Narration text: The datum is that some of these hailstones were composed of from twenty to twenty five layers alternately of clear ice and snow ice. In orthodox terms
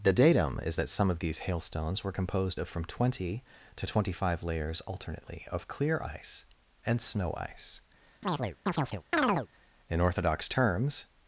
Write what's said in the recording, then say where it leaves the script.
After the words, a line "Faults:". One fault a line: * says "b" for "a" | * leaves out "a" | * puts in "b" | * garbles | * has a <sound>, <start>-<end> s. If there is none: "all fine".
The datum is that some of these hailstones were composed of from twenty to twenty five layers alternately of clear ice and snow ice. In orthodox terms
Faults:
* has a chirp, 8.2-9.5 s